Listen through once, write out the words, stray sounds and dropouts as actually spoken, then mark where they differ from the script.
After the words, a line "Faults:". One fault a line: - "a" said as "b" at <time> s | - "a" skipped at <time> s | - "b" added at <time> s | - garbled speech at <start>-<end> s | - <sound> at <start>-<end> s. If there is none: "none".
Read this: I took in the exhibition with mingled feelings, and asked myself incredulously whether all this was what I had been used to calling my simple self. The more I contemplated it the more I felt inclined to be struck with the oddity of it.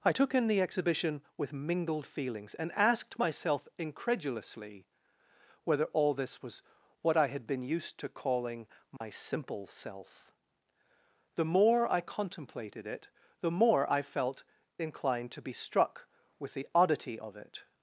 I took in the exhibition with mingled feelings, and asked myself incredulously whether all this was what I had been used to calling my simple self. The more I contemplated it the more I felt inclined to be struck with the oddity of it.
Faults:
- dropout at 9.0-9.0 s